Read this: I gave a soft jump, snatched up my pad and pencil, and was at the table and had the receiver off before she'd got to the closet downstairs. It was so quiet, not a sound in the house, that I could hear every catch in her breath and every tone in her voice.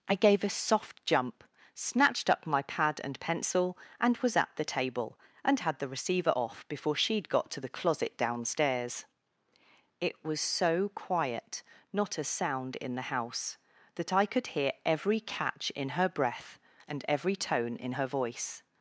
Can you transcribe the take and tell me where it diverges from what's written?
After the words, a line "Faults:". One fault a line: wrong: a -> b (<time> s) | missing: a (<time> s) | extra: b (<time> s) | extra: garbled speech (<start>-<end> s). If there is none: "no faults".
I gave a soft jump, snatched up my pad and pencil, and was at the table and had the receiver off before she'd got to the closet downstairs. It was so quiet, not a sound in the house, that I could hear every catch in her breath and every tone in her voice.
Faults:
no faults